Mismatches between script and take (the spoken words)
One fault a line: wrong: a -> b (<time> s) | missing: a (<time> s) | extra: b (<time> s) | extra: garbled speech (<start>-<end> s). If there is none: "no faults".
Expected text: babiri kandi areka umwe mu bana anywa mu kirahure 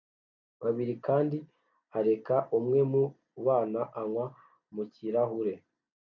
no faults